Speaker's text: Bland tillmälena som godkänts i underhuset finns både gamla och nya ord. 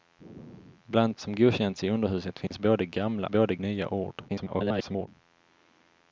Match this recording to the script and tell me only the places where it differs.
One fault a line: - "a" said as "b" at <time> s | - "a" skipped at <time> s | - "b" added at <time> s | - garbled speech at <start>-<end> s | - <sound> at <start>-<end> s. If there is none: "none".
- "tillmälena" skipped at 1.2 s
- dropout at 2.5-2.5 s
- "och" said as "både" at 3.3 s
- garbled speech at 4.3-5.1 s